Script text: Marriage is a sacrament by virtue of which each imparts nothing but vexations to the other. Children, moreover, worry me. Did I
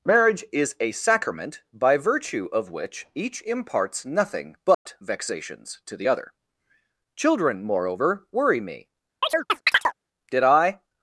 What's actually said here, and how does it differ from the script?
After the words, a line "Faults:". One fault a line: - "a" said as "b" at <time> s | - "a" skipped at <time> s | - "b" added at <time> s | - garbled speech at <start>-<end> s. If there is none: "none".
Marriage is a sacrament by virtue of which each imparts nothing but vexations to the other. Children, moreover, worry me. Did I
Faults:
none